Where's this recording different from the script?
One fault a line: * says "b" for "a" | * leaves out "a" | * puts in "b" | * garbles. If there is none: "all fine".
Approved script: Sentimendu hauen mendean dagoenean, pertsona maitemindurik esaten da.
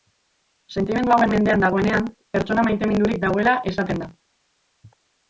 * puts in "dagoela"